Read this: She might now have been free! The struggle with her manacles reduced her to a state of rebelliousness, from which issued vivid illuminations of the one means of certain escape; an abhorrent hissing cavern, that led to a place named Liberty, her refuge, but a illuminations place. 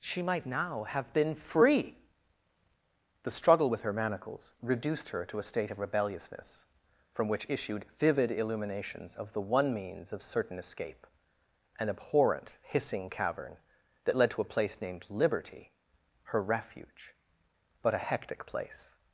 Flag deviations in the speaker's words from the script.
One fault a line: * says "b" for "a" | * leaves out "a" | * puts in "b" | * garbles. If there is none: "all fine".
* says "hectic" for "illuminations"